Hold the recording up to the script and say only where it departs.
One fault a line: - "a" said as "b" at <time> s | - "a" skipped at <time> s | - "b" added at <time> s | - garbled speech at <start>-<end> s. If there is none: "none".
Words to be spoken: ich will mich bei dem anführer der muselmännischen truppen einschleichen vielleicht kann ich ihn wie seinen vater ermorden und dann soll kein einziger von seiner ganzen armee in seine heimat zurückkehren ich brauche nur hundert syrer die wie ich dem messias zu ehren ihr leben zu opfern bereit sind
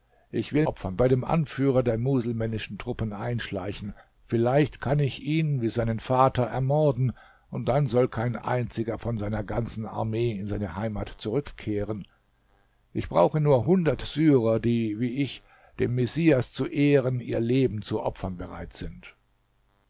- "mich" said as "opfern" at 0.6 s